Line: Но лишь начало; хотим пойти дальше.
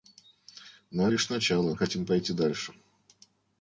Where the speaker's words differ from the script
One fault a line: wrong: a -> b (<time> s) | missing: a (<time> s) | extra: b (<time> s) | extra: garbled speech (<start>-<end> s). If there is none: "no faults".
no faults